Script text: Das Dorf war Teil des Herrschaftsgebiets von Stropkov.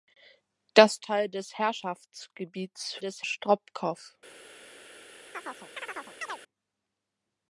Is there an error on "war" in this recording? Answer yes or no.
yes